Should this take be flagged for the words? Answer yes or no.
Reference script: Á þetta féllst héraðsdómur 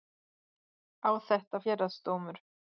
yes